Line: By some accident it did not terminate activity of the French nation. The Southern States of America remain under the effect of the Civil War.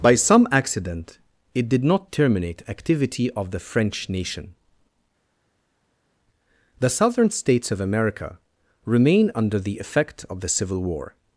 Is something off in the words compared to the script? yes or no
no